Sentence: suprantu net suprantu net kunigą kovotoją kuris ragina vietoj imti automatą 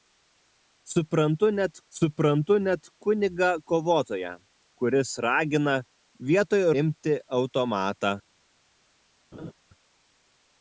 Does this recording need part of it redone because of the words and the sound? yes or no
yes